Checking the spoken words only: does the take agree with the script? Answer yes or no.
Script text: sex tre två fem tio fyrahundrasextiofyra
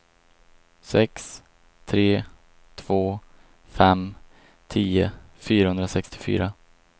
yes